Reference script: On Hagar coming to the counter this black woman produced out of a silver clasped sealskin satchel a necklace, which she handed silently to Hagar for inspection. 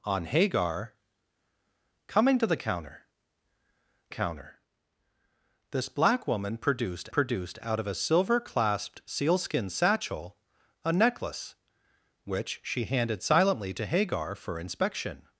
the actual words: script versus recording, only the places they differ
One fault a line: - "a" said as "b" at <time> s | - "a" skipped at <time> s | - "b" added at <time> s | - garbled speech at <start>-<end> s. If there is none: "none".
- "counter" added at 4.1 s
- "produced" added at 7.1 s